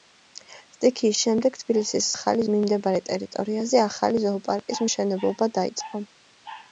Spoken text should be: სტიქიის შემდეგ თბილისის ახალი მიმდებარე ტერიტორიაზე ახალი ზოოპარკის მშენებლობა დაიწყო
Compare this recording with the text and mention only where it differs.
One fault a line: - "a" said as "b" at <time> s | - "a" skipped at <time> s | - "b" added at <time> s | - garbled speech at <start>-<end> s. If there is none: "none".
none